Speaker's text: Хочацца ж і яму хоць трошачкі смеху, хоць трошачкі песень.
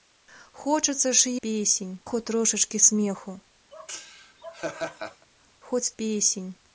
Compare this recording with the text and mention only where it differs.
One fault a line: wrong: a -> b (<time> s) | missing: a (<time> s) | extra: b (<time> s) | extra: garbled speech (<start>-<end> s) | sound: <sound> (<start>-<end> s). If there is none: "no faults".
wrong: яму -> песень (1.4 s)
sound: laugh (3.7-5.3 s)
missing: трошачкі (5.9 s)